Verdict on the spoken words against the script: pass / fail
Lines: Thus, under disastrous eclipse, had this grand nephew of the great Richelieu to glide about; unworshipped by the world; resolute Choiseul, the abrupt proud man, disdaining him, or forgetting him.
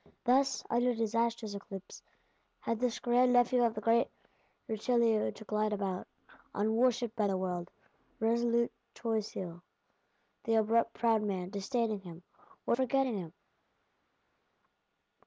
pass